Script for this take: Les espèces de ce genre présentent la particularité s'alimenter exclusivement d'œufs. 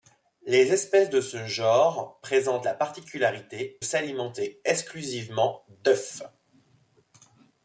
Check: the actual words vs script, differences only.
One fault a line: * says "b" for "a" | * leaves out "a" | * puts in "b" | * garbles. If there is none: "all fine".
all fine